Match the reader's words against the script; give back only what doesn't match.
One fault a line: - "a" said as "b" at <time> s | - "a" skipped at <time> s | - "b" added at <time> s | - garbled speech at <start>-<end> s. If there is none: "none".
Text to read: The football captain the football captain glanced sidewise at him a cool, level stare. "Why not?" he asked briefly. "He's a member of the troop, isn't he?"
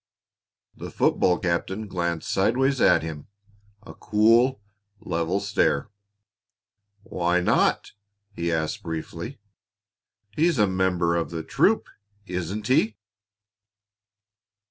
- "the football captain" skipped at 1.9 s